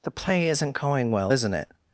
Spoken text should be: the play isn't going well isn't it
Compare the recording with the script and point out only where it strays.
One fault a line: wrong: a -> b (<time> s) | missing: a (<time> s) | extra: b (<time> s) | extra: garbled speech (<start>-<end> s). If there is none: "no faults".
no faults